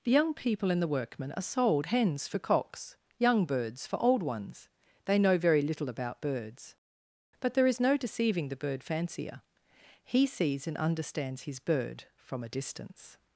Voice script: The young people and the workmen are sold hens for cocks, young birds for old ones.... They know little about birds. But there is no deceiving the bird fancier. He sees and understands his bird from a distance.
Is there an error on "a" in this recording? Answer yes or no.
no